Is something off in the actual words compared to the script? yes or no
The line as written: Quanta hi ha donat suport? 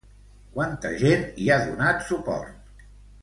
yes